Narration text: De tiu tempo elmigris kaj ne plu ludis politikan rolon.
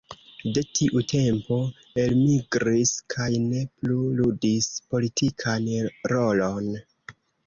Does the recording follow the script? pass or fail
pass